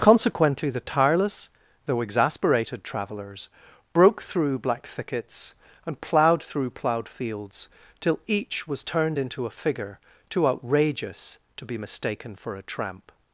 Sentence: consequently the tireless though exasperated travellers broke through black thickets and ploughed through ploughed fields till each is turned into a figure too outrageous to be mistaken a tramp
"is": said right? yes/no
no